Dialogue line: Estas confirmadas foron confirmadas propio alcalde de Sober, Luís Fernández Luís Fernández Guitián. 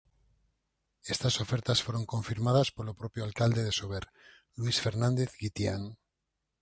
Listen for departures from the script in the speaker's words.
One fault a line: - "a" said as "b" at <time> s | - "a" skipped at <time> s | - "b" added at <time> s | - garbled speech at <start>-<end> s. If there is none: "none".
- "confirmadas" said as "ofertas" at 1.4 s
- "polo" added at 2.8 s
- "Luís Fernández" skipped at 5.3 s